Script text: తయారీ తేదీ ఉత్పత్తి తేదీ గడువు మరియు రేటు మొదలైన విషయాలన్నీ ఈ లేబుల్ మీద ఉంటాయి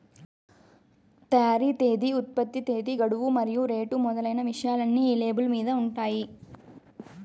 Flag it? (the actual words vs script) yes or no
no